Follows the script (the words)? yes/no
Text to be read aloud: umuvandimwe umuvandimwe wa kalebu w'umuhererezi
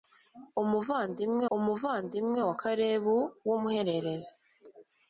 yes